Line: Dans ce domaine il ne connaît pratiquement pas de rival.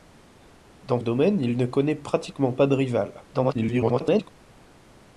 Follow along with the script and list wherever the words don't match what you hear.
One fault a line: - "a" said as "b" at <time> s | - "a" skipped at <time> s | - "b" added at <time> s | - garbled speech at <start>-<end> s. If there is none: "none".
- "ce" skipped at 1.0 s
- garbled speech at 3.3-4.3 s